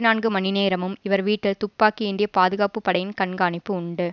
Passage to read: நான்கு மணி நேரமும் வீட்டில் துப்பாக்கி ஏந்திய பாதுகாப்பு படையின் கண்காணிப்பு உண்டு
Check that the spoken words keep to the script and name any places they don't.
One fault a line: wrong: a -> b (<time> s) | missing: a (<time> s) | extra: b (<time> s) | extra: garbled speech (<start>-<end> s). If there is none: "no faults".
extra: இவர் (1.0 s)